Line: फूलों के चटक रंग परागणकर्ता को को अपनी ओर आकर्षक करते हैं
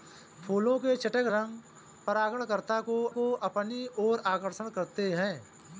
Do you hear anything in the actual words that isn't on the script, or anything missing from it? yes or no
no